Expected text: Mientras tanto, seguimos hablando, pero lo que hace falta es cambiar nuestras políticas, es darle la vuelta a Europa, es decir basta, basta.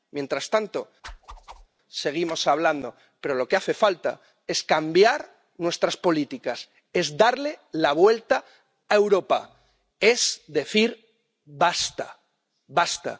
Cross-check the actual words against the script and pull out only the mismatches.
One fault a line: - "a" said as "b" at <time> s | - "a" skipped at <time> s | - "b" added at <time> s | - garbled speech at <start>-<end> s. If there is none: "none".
none